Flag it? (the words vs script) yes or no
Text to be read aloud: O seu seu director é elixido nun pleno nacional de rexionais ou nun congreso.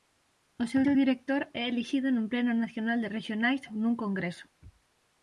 no